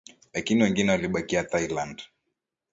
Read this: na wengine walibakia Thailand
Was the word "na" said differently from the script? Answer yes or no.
yes